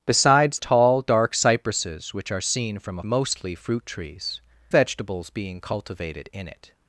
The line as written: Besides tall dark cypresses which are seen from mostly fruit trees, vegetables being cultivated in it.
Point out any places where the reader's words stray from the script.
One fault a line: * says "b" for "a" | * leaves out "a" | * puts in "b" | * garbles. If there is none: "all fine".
all fine